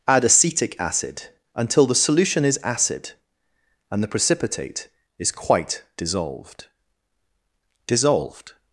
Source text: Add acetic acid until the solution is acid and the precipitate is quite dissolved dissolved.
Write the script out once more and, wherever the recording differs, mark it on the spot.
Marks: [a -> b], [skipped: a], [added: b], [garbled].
Add acetic acid until the solution is acid and the precipitate is quite dissolved dissolved.